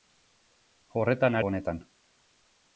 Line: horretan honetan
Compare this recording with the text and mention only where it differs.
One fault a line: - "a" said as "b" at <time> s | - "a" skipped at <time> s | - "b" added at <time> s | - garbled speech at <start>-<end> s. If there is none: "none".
none